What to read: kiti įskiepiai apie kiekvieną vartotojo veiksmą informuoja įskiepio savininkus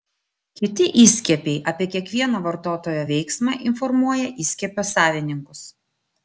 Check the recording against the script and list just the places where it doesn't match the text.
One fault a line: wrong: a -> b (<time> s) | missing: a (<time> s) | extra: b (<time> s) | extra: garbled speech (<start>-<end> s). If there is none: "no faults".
no faults